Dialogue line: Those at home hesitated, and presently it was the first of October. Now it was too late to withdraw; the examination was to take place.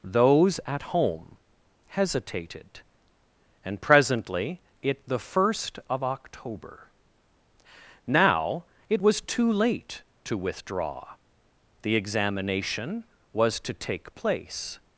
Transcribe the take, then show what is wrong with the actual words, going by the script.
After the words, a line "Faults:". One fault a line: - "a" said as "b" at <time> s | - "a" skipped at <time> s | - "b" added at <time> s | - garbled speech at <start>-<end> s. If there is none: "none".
Those at home hesitated, and presently it the first of October. Now it was too late to withdraw; the examination was to take place.
Faults:
- "was" skipped at 5.1 s